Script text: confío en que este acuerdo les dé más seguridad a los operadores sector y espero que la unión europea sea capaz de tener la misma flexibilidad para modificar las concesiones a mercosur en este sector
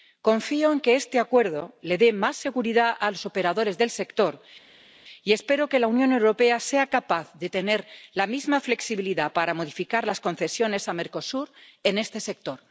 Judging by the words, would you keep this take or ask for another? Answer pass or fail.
fail